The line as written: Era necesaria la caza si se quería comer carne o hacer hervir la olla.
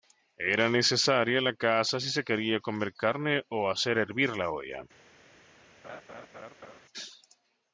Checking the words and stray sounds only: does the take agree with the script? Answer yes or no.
no